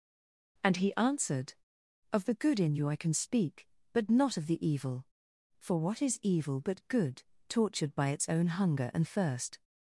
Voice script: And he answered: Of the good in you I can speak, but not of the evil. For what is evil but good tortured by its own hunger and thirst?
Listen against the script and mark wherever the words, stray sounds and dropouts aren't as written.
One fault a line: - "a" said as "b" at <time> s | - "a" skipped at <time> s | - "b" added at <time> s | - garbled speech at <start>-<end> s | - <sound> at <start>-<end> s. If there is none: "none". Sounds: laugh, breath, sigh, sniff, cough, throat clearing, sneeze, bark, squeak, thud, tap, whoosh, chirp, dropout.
none